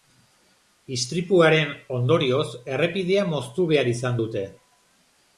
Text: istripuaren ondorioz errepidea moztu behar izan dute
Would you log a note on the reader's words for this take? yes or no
no